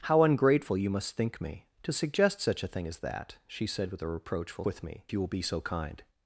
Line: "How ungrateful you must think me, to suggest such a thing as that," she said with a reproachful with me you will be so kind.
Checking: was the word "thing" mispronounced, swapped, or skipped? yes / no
no